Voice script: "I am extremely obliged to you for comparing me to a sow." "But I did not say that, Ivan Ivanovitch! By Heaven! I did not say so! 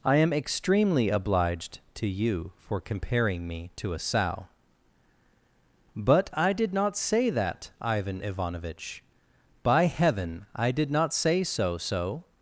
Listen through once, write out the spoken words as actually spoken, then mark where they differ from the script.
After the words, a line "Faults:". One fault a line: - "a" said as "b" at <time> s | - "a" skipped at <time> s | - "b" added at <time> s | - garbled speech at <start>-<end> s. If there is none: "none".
"I am extremely obliged to you for comparing me to a sow." "But I did not say that, Ivan Ivanovitch! By Heaven! I did not say so so!
Faults:
- "so" added at 11.8 s